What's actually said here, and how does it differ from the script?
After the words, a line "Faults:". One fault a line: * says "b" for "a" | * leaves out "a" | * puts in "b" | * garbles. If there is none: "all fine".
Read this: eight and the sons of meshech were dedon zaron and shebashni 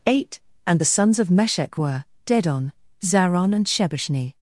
eight and the sons of meshech were dedon zaron and shebashni
Faults:
all fine